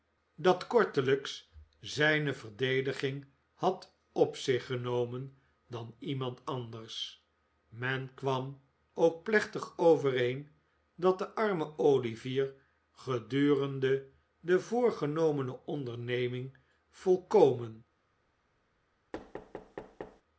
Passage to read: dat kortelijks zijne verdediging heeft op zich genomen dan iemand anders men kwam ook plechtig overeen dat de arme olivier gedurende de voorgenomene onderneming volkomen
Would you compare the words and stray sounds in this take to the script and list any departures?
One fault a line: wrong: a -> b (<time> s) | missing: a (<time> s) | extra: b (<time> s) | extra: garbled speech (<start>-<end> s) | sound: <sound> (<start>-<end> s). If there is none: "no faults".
wrong: heeft -> had (3.5 s)
sound: thud (19.1-20.2 s)